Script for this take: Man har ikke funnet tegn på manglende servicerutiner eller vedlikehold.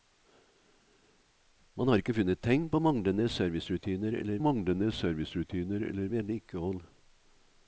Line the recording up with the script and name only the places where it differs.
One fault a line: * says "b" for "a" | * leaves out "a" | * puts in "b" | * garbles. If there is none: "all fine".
* puts in "manglende servicerutiner eller"